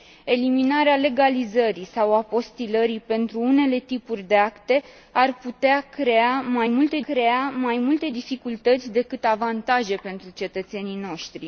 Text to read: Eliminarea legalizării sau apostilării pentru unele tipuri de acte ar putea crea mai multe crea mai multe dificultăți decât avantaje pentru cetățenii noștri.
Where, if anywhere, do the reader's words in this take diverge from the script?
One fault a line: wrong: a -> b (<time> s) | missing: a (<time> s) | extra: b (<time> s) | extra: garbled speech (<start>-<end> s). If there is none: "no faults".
no faults